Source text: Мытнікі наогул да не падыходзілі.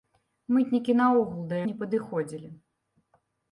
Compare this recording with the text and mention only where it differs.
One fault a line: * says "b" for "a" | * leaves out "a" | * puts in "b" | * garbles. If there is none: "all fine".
all fine